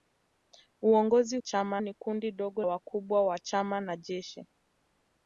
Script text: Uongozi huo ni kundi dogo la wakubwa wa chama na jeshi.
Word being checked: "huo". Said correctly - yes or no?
no